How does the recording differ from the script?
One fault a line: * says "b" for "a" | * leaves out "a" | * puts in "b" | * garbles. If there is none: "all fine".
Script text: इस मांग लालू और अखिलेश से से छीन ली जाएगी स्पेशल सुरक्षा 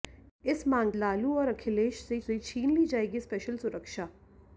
all fine